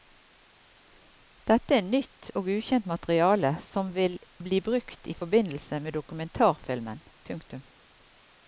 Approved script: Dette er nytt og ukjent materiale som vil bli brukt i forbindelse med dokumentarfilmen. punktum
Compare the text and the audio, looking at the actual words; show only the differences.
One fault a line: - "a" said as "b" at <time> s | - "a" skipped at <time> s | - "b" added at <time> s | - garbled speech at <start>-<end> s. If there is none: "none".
none